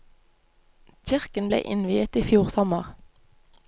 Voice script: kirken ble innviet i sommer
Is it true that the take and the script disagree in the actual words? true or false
true